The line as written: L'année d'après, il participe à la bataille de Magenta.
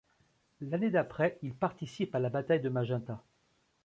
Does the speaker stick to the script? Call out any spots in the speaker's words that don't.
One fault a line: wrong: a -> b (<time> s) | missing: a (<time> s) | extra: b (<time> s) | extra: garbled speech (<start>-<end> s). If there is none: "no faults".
no faults